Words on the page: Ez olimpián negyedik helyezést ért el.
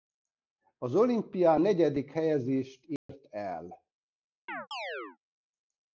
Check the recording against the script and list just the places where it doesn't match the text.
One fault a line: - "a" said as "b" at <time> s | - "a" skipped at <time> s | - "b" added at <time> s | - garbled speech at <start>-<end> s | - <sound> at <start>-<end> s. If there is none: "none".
- "Ez" said as "Az" at 0.8 s
- dropout at 3.0-3.1 s
- chirp at 4.5-5.2 s